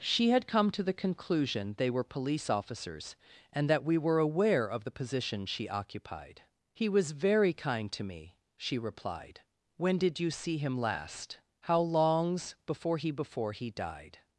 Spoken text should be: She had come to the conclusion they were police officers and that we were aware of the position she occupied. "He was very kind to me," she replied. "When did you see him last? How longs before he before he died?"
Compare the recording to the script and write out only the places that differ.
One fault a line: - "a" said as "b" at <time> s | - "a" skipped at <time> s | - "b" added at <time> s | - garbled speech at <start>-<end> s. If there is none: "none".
none